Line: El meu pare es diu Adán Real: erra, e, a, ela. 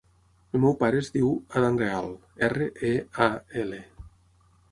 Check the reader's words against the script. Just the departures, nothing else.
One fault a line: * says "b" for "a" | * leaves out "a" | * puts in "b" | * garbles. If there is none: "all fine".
all fine